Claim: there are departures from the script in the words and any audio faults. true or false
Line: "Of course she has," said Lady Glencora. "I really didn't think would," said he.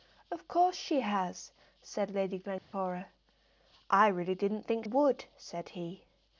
true